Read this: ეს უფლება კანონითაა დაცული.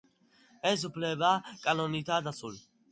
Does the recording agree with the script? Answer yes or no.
yes